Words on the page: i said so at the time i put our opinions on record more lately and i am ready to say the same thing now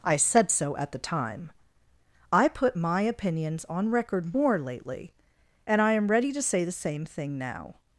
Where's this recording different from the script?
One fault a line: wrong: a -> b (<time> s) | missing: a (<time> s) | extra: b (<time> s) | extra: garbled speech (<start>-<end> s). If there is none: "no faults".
wrong: our -> my (2.7 s)